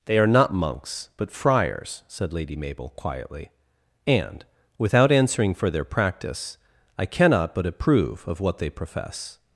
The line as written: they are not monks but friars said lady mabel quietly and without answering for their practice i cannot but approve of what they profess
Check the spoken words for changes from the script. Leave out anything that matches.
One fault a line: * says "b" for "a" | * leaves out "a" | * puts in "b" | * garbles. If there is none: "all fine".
all fine